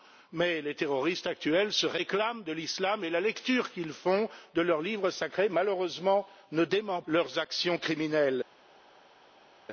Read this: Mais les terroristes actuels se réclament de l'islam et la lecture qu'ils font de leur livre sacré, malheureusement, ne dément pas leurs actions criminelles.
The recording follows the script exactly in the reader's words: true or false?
false